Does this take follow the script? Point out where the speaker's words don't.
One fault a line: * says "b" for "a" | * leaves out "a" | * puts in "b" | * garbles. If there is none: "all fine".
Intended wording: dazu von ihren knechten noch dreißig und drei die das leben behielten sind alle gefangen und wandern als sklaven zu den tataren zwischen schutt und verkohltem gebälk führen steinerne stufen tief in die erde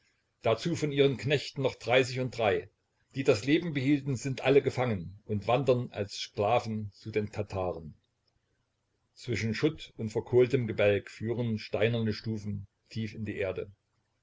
all fine